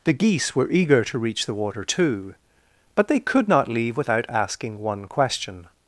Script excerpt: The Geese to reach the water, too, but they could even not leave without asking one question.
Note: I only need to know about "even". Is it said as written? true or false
false